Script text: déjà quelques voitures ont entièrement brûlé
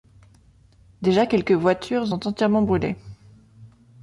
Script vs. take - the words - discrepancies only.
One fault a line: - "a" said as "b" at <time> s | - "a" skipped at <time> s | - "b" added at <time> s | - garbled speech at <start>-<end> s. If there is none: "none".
none